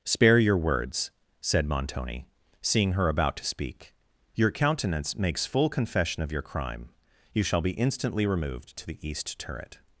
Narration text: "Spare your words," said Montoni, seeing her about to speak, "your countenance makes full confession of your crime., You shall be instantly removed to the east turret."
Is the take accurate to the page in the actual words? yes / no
yes